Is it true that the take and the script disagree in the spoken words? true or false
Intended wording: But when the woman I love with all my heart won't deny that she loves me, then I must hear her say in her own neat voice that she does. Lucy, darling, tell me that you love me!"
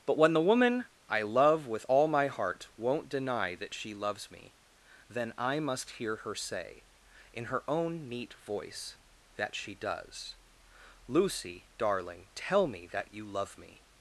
false